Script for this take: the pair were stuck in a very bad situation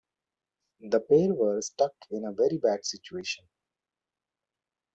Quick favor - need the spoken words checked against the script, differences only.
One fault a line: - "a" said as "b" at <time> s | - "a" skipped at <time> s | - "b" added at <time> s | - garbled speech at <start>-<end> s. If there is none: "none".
none